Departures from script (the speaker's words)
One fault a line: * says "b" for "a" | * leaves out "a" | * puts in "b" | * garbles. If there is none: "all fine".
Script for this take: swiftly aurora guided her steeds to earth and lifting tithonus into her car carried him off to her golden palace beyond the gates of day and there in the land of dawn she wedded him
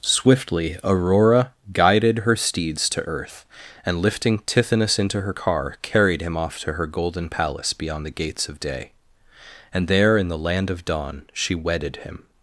all fine